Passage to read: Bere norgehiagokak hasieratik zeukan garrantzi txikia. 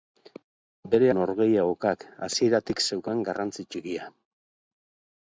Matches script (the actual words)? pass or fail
pass